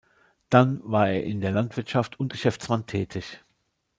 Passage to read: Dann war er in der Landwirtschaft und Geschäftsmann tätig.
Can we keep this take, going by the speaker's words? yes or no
yes